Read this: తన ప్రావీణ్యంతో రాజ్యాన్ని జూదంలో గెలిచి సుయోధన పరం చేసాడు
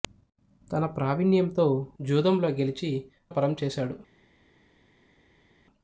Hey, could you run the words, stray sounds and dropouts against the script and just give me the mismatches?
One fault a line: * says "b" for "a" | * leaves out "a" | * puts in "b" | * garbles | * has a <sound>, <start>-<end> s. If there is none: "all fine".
* leaves out "రాజ్యాన్ని"
* leaves out "సుయోధన"